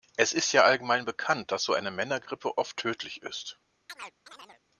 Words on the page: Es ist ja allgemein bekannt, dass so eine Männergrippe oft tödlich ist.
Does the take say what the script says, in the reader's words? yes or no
yes